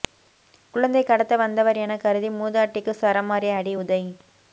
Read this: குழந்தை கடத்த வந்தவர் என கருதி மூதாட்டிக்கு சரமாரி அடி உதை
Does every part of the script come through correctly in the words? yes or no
yes